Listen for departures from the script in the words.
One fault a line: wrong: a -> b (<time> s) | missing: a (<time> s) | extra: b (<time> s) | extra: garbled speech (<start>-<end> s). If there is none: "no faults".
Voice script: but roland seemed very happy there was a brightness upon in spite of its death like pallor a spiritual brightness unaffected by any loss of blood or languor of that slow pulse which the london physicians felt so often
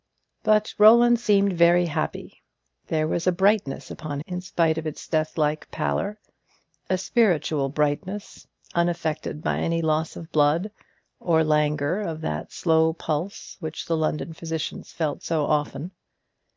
no faults